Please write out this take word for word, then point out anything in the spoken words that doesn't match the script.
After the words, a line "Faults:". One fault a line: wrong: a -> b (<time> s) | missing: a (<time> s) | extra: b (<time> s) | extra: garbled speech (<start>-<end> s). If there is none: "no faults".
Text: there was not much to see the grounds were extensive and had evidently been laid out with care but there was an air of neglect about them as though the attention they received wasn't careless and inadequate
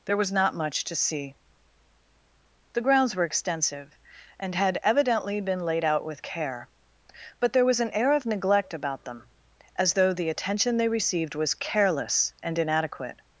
there was not much to see the grounds were extensive and had evidently been laid out with care but there was an air of neglect about them as though the attention they received was careless and inadequate
Faults:
wrong: wasn't -> was (11.3 s)